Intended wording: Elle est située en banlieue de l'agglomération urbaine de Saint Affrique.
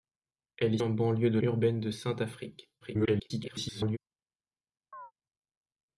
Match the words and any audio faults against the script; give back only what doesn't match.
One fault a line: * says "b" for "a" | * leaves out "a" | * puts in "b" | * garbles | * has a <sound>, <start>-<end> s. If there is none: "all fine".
* leaves out "située"
* leaves out "l'agglomération"
* garbles
* has a chirp, 4.9-5.1 s